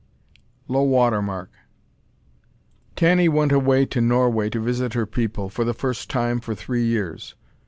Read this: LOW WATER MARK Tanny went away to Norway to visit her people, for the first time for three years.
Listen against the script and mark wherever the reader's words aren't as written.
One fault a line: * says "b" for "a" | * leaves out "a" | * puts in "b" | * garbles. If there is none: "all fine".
all fine